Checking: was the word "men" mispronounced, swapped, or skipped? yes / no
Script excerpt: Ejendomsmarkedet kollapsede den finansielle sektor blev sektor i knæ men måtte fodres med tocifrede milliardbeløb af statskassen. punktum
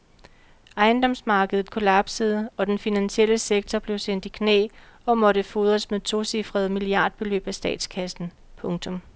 yes